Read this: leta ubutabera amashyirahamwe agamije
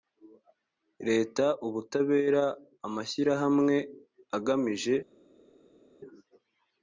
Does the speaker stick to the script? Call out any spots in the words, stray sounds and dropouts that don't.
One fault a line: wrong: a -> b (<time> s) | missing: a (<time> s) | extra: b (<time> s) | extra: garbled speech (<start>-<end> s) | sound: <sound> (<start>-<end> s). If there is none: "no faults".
no faults